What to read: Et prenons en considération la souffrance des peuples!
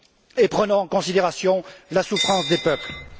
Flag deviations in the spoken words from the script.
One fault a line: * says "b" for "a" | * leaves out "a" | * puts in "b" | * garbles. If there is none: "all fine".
all fine